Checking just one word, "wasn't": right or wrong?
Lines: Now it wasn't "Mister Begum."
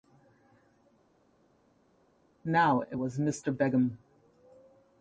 wrong